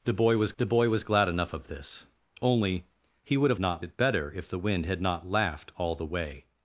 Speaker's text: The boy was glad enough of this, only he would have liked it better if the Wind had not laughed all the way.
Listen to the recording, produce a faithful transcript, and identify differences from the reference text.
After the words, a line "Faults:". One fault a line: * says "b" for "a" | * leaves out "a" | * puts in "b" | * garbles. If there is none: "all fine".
The boy was the boy was glad enough of this, only he would have not it better if the Wind had not laughed all the way.
Faults:
* puts in "the boy was"
* says "not" for "liked"